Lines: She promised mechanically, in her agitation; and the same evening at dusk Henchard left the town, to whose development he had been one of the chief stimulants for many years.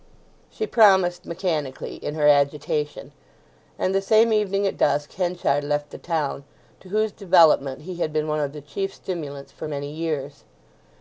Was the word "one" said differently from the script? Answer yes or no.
no